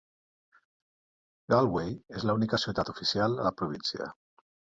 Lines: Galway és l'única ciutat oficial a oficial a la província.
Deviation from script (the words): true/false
true